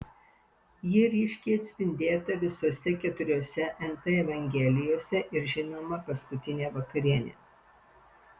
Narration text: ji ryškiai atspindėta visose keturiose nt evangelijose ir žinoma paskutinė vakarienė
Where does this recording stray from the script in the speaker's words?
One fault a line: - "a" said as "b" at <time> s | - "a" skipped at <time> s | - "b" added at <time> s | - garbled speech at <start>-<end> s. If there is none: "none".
none